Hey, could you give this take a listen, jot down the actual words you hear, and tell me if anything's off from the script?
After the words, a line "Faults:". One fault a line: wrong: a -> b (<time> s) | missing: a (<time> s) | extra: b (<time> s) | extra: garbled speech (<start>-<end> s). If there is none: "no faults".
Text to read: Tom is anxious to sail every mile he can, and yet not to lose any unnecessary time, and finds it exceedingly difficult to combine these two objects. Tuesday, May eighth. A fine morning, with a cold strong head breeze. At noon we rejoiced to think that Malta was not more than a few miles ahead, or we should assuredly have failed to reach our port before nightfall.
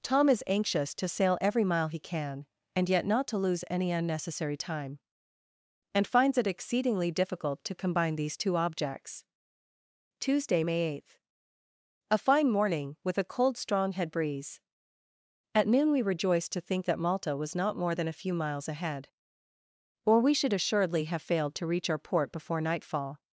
Tom is anxious to sail every mile he can, and yet not to lose any unnecessary time, and finds it exceedingly difficult to combine these two objects. Tuesday, May eighth. A fine morning, with a cold strong head breeze. At noon we rejoiced to think that Malta was not more than a few miles ahead, or we should assuredly have failed to reach our port before nightfall.
Faults:
no faults